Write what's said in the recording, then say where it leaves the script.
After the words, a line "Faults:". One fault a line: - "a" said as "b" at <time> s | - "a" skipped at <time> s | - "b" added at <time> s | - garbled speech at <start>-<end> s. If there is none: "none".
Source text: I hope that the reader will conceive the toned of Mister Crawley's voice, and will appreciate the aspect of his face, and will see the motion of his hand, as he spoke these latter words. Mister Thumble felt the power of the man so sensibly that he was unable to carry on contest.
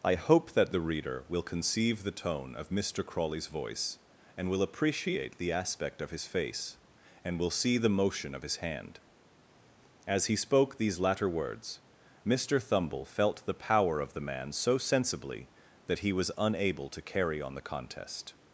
I hope that the reader will conceive the tone of Mister Crawley's voice, and will appreciate the aspect of his face, and will see the motion of his hand, as he spoke these latter words. Mister Thumble felt the power of the man so sensibly that he was unable to carry on the contest.
Faults:
- "toned" said as "tone" at 2.2 s
- "the" added at 17.5 s